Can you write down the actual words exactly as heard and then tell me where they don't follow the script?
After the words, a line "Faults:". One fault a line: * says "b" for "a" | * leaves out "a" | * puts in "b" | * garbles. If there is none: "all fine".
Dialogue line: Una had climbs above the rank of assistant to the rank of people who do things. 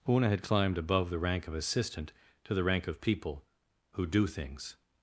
Una had climbed above the rank of assistant to the rank of people who do things.
Faults:
* says "climbed" for "climbs"